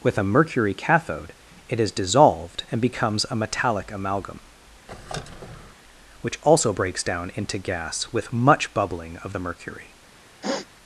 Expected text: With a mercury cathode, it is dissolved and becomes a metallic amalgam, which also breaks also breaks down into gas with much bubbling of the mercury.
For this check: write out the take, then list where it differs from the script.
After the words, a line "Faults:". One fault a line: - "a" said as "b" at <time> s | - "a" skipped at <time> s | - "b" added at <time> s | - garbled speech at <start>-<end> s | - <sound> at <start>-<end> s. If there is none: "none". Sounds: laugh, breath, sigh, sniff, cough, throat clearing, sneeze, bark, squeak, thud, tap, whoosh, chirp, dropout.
With a mercury cathode, it is dissolved and becomes a metallic amalgam, which also breaks down into gas with much bubbling of the mercury.
Faults:
- squeak at 4.9-5.7 s
- "also breaks" skipped at 7.0 s
- sniff at 10.4-10.7 s